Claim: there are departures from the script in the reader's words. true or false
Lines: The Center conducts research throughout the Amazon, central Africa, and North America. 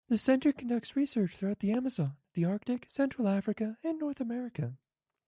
true